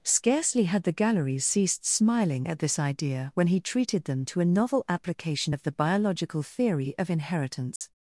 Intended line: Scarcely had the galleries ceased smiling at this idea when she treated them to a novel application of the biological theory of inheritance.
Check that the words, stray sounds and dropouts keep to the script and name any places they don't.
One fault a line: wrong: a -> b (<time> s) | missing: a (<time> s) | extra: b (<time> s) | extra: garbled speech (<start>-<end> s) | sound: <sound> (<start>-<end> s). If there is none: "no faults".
wrong: she -> he (3.5 s)
sound: dropout (7.8-7.8 s)